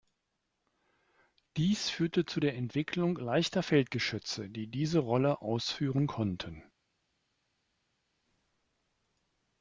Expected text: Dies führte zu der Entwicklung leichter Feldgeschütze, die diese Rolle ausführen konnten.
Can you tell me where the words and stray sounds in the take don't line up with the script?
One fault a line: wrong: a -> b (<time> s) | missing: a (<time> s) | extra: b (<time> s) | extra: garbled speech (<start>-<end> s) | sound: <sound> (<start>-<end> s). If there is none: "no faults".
no faults